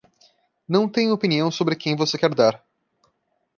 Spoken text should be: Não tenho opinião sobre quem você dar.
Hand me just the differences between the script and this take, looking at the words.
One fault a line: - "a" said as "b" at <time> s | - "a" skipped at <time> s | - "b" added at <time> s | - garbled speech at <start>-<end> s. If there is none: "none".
- "quer" added at 2.2 s